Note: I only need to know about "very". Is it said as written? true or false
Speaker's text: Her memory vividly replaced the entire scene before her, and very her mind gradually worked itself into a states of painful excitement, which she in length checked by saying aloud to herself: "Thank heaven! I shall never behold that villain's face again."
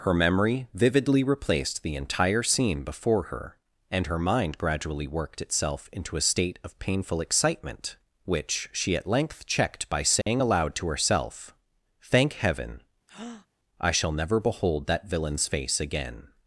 false